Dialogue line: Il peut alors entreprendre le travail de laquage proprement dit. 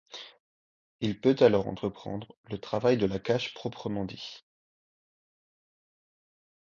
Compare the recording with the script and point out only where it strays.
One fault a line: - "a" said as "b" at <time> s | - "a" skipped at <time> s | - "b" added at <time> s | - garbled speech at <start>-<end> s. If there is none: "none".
none